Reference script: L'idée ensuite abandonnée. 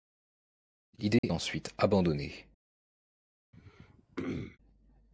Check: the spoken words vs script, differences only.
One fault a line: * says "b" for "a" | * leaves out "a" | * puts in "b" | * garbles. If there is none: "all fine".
all fine